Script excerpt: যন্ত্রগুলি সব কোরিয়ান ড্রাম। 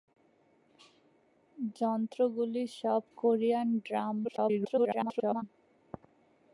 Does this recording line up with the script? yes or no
no